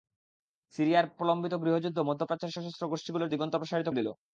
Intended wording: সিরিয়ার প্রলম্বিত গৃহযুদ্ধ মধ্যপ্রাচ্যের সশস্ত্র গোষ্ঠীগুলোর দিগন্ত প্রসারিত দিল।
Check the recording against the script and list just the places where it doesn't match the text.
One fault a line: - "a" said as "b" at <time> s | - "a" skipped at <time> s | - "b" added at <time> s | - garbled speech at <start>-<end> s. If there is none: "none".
none